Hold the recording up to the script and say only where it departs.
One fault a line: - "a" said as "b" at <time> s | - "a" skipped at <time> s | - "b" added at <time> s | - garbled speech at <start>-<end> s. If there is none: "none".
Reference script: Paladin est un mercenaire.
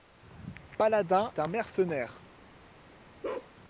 - "est" skipped at 1.3 s